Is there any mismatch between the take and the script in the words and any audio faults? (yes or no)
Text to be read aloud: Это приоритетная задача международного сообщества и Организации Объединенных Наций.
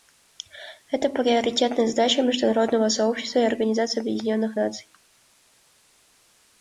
no